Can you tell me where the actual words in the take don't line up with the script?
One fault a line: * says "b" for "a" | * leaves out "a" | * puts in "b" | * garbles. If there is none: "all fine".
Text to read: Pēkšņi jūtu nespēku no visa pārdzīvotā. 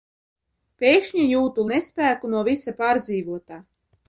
all fine